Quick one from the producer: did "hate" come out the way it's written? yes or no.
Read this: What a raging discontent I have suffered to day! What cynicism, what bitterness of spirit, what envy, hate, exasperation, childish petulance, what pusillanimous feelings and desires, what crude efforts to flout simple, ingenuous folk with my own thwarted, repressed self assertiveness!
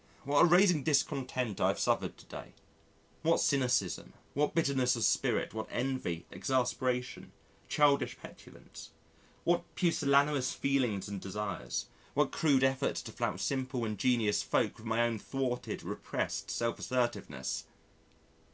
no